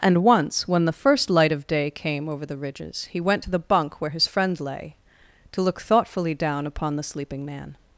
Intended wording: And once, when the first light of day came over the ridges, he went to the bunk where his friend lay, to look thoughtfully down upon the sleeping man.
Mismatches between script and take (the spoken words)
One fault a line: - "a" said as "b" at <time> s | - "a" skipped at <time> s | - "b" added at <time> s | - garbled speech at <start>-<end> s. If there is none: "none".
none